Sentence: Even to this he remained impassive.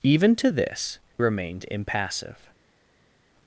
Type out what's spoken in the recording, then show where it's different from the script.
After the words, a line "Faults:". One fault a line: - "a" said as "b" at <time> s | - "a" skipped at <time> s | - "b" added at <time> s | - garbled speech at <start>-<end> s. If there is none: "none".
Even to this remained impassive.
Faults:
- "he" skipped at 1.0 s